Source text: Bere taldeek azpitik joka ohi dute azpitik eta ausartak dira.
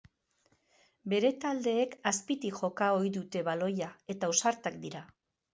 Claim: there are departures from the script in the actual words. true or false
true